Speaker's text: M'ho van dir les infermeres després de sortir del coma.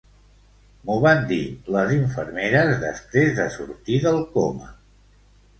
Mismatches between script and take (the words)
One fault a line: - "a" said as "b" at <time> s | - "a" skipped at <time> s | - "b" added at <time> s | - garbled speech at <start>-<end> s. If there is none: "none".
none